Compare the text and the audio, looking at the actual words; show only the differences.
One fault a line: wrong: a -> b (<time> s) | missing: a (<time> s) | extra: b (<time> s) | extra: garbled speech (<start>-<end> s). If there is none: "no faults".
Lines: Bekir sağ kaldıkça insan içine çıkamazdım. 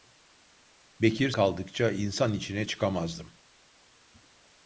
missing: sağ (1.3 s)